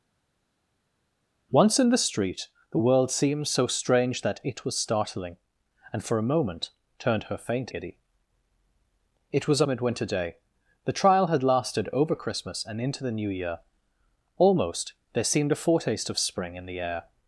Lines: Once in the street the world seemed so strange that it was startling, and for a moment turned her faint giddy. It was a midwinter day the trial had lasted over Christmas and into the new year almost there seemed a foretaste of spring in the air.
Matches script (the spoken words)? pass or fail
pass